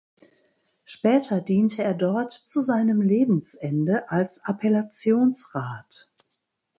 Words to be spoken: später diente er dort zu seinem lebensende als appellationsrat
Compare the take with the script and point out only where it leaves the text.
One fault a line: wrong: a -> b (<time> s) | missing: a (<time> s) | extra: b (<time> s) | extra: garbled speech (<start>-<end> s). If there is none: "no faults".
no faults